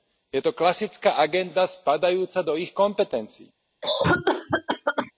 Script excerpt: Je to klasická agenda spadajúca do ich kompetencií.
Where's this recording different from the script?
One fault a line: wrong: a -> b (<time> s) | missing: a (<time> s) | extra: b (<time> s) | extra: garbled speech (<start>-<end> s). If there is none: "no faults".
no faults